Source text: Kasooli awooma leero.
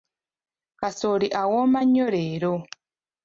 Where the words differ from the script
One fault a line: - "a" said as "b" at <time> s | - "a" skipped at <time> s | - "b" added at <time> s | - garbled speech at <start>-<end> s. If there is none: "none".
- "nnyo" added at 1.9 s